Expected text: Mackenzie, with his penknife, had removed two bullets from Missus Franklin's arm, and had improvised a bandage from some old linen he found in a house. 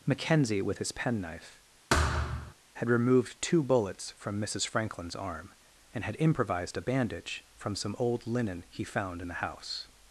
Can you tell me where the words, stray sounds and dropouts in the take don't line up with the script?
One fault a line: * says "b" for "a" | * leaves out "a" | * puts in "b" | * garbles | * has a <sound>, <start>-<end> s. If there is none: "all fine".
* has a thud, 1.9-2.5 s
* says "the" for "a"